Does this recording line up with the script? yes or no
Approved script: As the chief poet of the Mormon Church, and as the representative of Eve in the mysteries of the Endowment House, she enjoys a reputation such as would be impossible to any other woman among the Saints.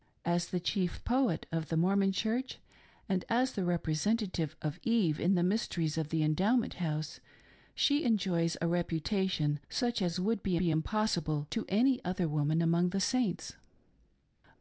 no